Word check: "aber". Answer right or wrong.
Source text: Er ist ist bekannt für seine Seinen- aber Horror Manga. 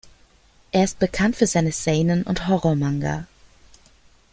wrong